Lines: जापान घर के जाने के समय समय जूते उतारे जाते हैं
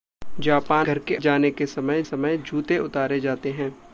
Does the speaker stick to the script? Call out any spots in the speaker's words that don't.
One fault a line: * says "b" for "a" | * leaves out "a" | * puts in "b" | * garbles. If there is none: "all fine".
all fine